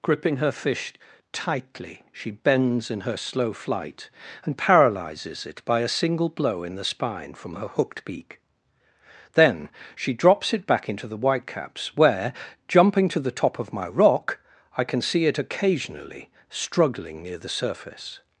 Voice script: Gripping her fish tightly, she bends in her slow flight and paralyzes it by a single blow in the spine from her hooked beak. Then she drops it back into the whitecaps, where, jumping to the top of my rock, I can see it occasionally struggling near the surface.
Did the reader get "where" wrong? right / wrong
right